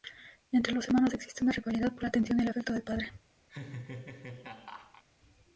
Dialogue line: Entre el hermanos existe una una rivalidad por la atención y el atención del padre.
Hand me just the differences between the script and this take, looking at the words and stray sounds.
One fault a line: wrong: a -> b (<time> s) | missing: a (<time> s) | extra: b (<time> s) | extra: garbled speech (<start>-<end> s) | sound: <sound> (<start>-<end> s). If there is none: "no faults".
wrong: el -> los (0.7 s)
missing: una (1.5 s)
wrong: atención -> afecto (2.5 s)
sound: laugh (3.5-5.0 s)